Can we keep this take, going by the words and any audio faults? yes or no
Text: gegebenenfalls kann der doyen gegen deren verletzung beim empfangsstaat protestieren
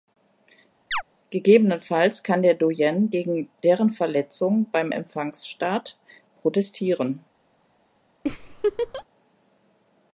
no